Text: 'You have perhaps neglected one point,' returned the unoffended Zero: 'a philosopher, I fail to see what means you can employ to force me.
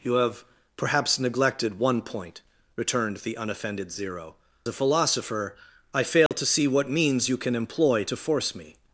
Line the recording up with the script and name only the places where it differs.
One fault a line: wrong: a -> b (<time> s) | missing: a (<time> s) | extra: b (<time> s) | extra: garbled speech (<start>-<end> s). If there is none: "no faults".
no faults